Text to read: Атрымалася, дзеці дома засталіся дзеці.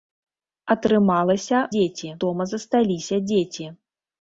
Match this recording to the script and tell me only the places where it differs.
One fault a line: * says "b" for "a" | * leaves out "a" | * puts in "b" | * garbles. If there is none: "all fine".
all fine